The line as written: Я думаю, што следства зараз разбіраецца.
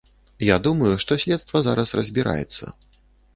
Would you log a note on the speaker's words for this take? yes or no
no